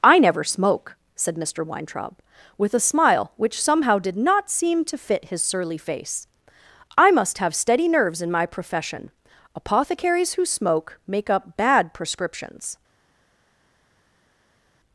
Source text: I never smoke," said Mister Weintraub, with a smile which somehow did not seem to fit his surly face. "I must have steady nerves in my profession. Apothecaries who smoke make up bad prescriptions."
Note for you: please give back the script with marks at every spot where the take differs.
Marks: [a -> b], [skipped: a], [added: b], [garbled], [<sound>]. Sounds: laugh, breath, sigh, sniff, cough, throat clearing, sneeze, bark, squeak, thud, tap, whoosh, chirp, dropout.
I never smoke," said Mister Weintraub, with a smile which somehow did not seem to fit his surly face. "I must have steady nerves in my profession. Apothecaries who smoke make up bad prescriptions."